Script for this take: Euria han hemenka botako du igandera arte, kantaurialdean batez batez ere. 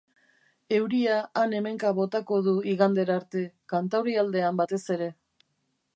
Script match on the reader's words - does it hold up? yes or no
no